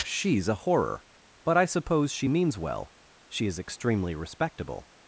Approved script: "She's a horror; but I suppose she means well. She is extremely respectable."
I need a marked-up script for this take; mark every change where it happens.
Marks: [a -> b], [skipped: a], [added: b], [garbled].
"She's a horror; but I suppose she means well. She is extremely respectable."